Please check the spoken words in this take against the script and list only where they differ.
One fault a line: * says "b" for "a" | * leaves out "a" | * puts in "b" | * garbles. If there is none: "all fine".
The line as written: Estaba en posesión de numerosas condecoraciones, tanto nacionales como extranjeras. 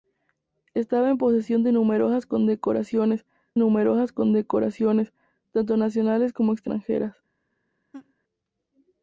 * puts in "numerosas condecoraciones"